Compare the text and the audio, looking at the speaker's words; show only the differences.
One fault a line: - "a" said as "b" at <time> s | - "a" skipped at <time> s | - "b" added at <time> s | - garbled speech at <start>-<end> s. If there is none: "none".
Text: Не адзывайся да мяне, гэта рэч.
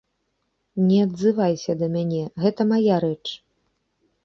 - "мая" added at 2.7 s